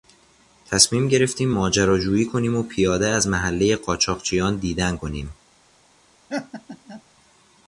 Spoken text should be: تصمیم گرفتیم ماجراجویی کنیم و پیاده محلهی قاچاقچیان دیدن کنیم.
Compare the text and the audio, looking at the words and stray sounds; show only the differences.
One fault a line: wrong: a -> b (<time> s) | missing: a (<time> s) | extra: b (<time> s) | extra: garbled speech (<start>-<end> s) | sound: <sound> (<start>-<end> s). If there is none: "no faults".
extra: از (3.1 s)
sound: laugh (6.3-7.0 s)